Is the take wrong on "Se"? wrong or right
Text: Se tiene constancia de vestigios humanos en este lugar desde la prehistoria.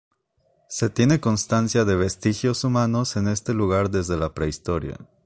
right